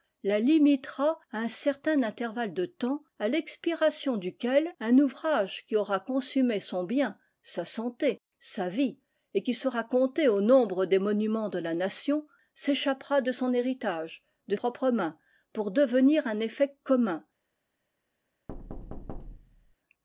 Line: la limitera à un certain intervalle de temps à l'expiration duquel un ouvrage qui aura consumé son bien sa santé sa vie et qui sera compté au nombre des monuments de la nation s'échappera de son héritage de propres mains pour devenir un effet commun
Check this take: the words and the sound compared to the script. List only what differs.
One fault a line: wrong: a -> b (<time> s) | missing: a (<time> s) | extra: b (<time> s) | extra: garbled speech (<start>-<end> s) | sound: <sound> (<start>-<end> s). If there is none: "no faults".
sound: thud (18.5-19.8 s)